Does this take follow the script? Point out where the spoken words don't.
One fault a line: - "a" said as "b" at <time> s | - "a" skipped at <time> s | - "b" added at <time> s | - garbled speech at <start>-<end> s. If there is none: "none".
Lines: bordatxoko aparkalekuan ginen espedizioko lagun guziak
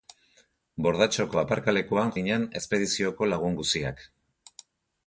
none